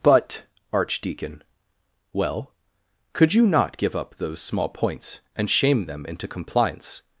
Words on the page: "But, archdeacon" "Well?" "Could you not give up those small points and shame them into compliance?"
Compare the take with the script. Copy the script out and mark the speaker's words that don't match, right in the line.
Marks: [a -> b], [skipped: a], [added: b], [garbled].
"But, archdeacon" "Well?" "Could you not give up those small points and shame them into compliance?"